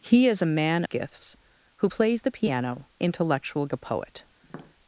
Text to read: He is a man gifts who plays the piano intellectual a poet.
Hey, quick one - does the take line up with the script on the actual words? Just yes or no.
yes